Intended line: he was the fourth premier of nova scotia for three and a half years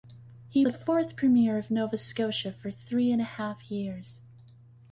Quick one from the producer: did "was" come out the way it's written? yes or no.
no